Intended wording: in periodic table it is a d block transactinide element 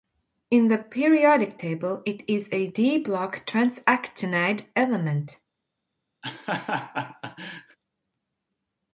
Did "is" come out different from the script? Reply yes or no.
no